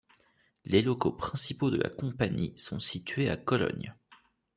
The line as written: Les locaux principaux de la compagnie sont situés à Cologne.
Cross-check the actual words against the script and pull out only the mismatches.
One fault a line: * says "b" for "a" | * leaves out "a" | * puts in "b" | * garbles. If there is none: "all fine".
all fine